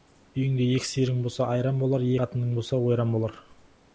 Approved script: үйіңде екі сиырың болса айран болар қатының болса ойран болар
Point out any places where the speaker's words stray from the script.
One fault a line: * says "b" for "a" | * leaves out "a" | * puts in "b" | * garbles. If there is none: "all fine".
all fine